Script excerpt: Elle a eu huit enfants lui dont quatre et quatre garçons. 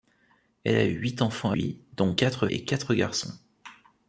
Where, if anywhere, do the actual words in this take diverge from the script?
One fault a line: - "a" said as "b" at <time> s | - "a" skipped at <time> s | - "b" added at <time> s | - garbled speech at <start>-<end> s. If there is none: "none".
none